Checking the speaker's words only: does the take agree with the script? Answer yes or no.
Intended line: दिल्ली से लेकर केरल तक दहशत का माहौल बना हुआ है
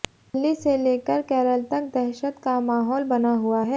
yes